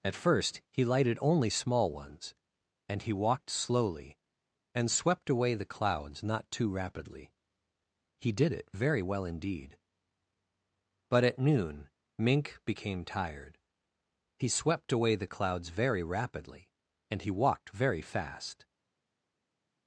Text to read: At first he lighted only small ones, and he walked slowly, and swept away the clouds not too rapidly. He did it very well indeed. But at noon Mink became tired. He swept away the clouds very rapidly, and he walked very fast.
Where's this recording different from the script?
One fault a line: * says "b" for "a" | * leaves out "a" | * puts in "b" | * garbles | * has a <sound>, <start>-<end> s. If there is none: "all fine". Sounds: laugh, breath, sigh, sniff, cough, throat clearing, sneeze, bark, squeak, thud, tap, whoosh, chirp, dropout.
all fine